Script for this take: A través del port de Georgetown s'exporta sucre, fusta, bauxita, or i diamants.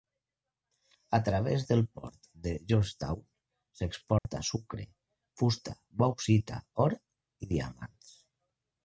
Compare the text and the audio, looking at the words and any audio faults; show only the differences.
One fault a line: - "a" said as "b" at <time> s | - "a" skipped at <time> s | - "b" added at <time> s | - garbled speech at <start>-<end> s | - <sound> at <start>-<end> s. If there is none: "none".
- dropout at 4.2-4.2 s